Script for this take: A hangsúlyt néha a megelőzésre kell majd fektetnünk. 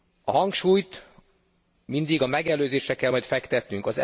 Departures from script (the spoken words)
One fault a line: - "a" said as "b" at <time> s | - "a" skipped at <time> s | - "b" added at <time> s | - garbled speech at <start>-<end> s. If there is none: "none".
- "néha" said as "mindig" at 1.8 s